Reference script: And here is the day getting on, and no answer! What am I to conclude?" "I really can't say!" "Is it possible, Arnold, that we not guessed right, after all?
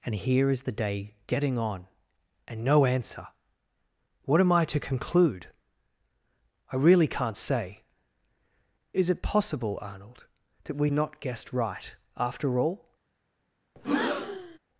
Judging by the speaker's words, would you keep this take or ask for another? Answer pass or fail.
pass